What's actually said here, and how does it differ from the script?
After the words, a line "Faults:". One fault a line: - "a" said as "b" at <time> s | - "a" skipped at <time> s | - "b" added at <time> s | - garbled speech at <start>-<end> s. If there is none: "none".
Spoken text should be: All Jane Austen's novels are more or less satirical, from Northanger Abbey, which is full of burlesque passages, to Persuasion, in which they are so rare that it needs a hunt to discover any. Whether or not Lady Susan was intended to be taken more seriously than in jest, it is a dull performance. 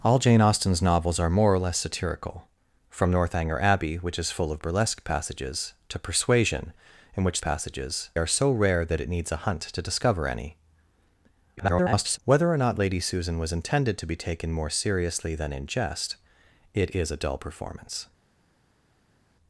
All Jane Austen's novels are more or less satirical, from Northanger Abbey, which is full of burlesque passages, to Persuasion, in which passages are so rare that it needs a hunt to discover any. [garbled] Whether or not Lady Susan was intended to be taken more seriously than in jest, it is a dull performance.
Faults:
- "they" said as "passages" at 7.4 s
- garbled speech at 11.6-12.2 s